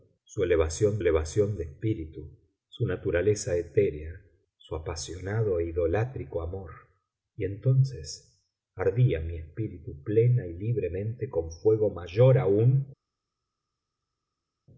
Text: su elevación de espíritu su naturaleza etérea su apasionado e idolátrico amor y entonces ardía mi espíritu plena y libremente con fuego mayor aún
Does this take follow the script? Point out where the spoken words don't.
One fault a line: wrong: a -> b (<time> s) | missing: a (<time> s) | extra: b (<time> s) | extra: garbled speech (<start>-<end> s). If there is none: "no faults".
extra: elevación (1.0 s)